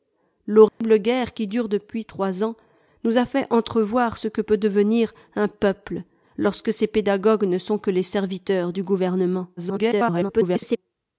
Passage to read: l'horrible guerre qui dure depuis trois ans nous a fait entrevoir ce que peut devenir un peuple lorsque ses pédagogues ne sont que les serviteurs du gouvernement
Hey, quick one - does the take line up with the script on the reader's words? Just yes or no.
no